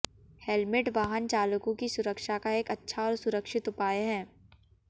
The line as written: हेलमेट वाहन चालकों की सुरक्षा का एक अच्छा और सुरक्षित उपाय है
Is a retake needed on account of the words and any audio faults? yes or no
no